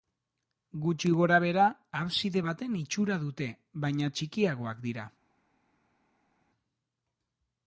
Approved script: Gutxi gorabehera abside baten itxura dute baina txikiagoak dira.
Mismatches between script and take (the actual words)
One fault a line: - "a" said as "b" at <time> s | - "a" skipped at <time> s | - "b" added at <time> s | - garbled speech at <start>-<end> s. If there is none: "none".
none